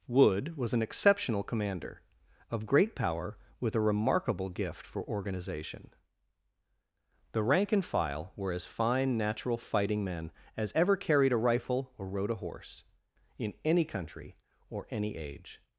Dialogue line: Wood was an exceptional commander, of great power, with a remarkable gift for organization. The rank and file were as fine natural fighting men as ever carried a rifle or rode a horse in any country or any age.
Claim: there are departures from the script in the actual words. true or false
false